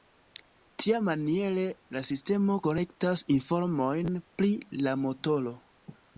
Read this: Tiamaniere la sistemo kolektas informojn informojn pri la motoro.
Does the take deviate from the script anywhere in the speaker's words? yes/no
yes